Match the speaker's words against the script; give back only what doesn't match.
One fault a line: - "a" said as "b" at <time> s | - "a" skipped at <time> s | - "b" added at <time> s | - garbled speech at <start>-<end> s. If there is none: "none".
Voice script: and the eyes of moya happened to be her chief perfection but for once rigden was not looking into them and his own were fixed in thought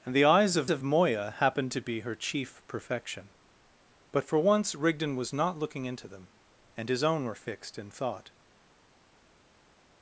- "of" added at 0.7 s